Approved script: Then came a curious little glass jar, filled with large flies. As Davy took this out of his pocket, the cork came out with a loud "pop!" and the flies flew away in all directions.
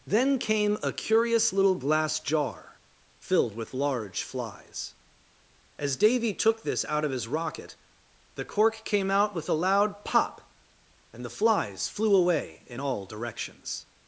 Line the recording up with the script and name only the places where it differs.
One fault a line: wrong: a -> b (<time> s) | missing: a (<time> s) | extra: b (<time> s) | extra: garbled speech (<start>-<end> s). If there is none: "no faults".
wrong: pocket -> rocket (7.3 s)